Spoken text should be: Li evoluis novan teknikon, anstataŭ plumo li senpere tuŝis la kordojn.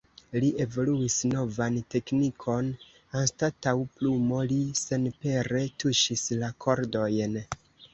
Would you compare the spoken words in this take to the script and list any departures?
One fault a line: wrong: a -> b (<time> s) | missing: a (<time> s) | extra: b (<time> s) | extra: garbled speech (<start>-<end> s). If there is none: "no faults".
no faults